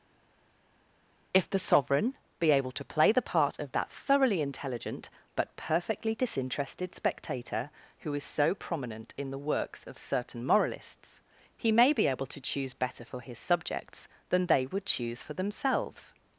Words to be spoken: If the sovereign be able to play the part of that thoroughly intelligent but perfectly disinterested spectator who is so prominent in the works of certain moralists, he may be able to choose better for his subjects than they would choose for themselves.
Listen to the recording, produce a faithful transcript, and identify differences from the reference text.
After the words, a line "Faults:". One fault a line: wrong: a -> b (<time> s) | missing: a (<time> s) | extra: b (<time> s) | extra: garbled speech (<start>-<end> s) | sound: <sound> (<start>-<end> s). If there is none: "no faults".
If the sovereign be able to play the part of that thoroughly intelligent but perfectly disinterested spectator who is so prominent in the works of certain moralists, he may be able to choose better for his subjects than they would choose for themselves.
Faults:
no faults